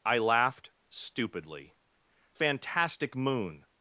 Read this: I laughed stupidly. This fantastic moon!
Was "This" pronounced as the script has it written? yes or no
no